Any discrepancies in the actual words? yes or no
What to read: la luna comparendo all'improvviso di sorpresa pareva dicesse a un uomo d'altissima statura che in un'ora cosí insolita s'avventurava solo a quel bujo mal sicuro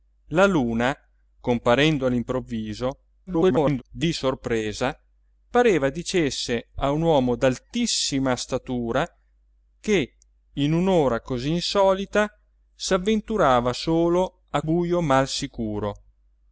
yes